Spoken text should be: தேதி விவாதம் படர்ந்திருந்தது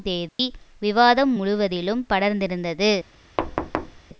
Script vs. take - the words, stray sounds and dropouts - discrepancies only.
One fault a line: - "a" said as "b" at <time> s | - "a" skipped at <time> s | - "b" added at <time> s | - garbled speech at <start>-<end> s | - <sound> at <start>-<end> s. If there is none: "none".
- dropout at 0.3-0.4 s
- "முழுவதிலும்" added at 1.3 s
- thud at 3.4-4.0 s